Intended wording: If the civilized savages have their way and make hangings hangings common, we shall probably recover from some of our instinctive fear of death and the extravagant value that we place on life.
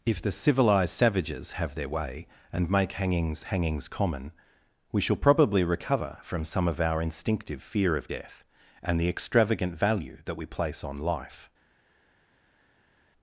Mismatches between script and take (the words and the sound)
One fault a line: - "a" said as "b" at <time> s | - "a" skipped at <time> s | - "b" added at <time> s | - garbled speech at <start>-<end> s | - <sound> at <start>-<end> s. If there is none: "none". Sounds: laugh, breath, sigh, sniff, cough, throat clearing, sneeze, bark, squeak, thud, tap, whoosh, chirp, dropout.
none